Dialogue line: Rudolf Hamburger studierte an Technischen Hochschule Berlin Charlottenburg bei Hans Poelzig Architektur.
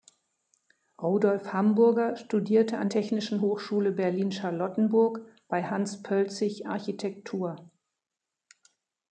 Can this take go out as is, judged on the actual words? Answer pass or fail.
pass